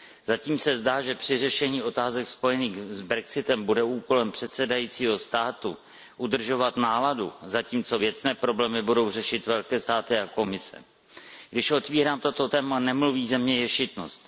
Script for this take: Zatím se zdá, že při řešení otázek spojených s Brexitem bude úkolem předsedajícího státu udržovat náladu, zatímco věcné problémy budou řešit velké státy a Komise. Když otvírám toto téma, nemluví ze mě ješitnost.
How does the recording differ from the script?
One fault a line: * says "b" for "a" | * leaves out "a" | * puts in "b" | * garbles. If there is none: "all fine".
all fine